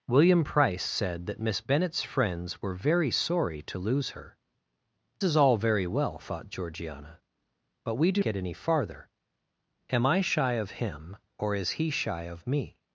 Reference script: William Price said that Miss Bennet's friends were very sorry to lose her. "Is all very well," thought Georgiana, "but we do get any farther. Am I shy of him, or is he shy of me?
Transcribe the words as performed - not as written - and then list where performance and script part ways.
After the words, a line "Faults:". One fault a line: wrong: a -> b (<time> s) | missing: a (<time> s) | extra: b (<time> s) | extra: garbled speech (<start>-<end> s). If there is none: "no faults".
William Price said that Miss Bennet's friends were very sorry to lose her. "Is all very well," thought Georgiana, "but we do get any farther. Am I shy of him, or is he shy of me?
Faults:
no faults